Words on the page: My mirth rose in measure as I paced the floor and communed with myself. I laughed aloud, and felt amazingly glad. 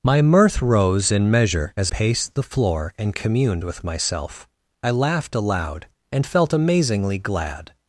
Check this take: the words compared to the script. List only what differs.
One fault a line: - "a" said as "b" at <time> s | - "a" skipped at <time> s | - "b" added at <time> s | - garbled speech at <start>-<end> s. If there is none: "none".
- "I" skipped at 1.9 s